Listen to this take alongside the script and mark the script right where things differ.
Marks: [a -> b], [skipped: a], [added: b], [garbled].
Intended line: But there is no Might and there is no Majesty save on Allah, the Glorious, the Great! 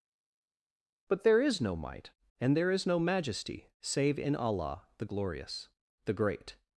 But there is no Might and there is no Majesty save [on -> in] Allah, the Glorious, the Great!